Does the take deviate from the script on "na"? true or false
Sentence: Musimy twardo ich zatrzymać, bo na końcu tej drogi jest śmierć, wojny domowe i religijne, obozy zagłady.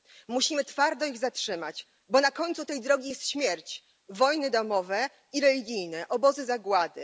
false